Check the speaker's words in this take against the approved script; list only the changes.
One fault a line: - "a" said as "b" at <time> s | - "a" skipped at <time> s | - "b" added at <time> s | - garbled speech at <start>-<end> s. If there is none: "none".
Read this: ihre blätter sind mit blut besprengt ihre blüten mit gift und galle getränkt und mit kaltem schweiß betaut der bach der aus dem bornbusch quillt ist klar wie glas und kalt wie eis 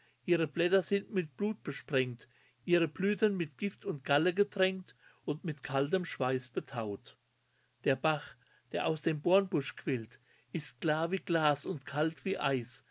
none